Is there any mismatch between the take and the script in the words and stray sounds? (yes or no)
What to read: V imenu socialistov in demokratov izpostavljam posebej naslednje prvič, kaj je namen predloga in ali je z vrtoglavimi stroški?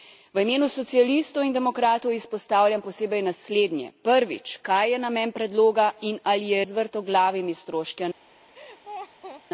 yes